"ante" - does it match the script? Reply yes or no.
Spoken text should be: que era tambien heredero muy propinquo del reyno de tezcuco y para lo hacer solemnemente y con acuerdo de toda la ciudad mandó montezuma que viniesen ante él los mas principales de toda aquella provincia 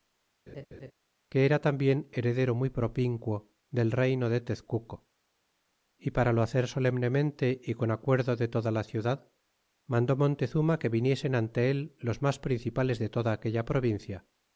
yes